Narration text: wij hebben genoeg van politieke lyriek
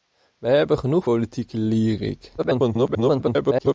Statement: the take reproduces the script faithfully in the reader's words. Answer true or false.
false